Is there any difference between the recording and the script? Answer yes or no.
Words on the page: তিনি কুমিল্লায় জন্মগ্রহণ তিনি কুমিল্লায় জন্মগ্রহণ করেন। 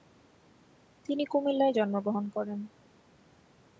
yes